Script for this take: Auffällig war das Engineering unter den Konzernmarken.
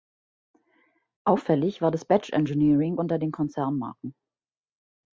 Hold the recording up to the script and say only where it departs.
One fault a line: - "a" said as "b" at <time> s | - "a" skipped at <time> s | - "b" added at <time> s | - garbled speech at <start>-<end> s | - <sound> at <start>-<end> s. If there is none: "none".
- "Badge" added at 2.1 s